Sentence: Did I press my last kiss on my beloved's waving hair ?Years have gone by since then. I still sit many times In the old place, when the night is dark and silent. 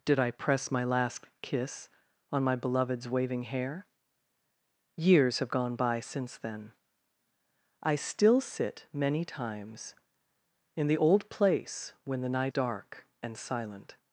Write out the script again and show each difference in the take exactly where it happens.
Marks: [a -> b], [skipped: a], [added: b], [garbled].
Did I press my last kiss on my beloved's waving hair ?Years have gone by since then. I still sit many times In the old place, when the night [skipped: is] dark and silent.